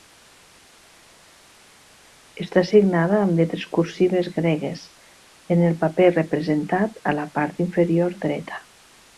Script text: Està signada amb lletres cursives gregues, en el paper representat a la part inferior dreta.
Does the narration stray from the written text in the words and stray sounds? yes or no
no